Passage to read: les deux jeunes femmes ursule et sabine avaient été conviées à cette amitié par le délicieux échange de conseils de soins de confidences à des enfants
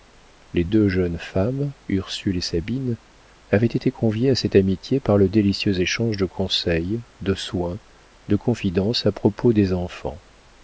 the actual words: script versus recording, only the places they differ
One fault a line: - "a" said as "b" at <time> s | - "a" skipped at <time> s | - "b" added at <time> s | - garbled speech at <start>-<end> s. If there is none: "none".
- "propos" added at 9.1 s